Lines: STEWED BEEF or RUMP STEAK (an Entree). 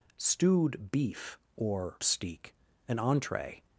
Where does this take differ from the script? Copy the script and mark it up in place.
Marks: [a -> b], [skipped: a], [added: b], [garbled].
STEWED BEEF or [skipped: RUMP] STEAK (an Entree).